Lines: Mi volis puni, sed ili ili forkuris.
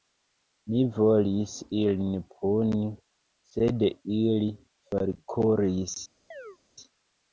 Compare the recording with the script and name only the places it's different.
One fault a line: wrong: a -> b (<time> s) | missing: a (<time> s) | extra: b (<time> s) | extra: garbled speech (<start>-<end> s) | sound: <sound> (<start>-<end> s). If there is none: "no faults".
extra: ilin (1.8 s)
missing: ili (4.5 s)
sound: chirp (6.3-6.6 s)